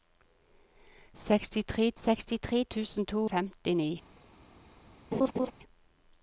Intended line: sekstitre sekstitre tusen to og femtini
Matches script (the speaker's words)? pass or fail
pass